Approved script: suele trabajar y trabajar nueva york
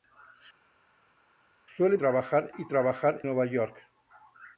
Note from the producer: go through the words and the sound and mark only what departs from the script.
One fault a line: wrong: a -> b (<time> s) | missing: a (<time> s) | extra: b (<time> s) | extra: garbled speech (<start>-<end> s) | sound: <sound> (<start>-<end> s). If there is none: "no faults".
no faults